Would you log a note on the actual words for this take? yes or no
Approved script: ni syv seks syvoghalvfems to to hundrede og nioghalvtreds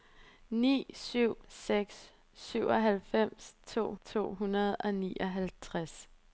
no